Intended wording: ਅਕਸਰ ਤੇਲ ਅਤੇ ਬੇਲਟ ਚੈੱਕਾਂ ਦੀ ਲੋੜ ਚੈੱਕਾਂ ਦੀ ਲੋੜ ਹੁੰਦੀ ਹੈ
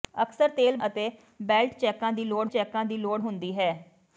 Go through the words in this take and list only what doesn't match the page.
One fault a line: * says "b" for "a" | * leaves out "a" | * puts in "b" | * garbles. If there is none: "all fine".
all fine